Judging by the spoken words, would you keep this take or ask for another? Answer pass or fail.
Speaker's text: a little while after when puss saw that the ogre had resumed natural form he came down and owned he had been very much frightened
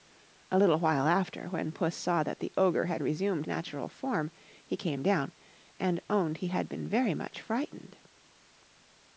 pass